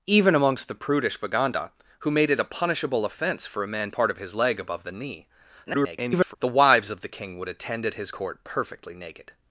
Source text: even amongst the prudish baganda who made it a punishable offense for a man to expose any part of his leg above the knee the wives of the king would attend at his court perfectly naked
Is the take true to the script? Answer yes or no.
no